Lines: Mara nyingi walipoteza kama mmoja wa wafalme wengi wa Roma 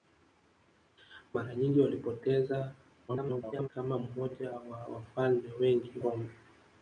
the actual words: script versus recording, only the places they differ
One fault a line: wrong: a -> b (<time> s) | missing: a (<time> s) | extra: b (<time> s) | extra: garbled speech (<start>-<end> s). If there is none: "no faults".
extra: garbled speech (3.1-3.7 s)
missing: wa (6.0 s)